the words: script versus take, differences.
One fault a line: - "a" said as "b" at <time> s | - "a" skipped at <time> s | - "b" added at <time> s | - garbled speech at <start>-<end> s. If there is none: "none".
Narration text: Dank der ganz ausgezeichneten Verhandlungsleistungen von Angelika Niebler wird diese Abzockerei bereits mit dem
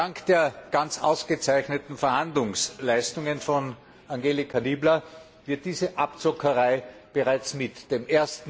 none